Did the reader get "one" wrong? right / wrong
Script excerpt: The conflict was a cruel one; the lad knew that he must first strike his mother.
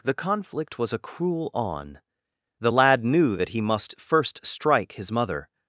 wrong